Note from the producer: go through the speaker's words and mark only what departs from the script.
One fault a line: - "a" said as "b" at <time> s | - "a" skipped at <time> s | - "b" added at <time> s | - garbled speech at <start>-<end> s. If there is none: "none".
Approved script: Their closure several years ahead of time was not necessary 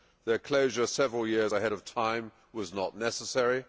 none